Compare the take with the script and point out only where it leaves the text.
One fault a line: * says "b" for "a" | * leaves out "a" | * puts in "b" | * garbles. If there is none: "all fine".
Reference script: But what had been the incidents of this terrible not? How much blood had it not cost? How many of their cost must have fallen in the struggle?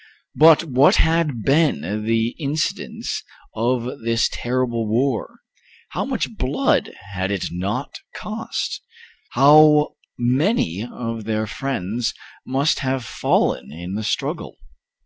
* says "war" for "not"
* says "friends" for "cost"